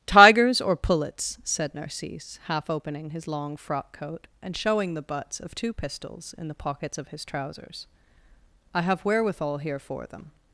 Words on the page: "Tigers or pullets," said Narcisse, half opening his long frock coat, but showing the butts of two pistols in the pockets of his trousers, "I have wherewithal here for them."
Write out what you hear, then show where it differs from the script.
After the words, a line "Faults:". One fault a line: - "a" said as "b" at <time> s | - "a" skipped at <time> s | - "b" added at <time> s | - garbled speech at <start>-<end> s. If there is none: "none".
"Tigers or pullets," said Narcisse, half opening his long frock coat, and showing the butts of two pistols in the pockets of his trousers, "I have wherewithal here for them."
Faults:
- "but" said as "and" at 4.4 s